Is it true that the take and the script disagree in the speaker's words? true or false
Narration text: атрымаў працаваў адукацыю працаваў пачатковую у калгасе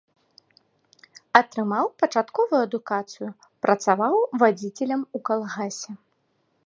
true